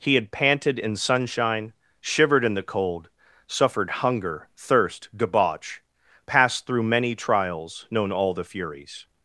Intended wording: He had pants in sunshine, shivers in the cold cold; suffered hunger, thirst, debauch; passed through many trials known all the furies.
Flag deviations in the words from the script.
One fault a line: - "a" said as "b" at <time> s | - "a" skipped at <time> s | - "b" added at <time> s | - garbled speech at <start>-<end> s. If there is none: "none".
- "pants" said as "panted" at 0.3 s
- "shivers" said as "shivered" at 2.0 s
- "cold" skipped at 3.1 s